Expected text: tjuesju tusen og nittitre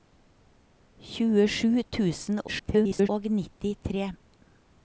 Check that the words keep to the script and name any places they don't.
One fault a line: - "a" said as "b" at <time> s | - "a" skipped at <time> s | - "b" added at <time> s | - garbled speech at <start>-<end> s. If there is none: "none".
- garbled speech at 2.5-3.1 s